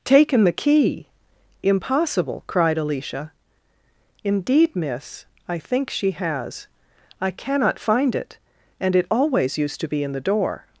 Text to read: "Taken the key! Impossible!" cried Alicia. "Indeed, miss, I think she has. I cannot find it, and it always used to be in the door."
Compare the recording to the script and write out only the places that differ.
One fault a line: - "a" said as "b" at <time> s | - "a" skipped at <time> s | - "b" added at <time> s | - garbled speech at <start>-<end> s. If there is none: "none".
none